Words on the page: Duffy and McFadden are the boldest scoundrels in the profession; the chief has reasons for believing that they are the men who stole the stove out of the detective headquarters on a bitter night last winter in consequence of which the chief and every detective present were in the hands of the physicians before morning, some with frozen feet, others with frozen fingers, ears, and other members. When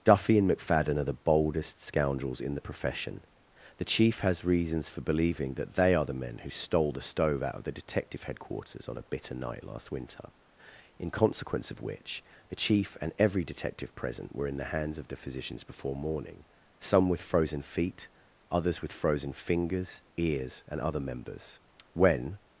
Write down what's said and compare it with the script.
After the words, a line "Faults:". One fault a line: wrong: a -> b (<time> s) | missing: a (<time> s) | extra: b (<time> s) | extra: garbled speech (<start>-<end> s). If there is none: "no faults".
Duffy and McFadden are the boldest scoundrels in the profession; the chief has reasons for believing that they are the men who stole the stove out of the detective headquarters on a bitter night last winter in consequence of which the chief and every detective present were in the hands of the physicians before morning, some with frozen feet, others with frozen fingers, ears, and other members. When
Faults:
no faults